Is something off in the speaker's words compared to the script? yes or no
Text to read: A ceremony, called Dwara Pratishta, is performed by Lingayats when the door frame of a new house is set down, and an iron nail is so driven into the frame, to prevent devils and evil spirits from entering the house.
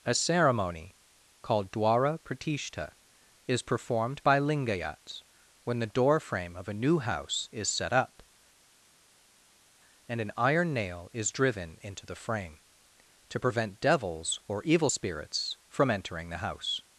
yes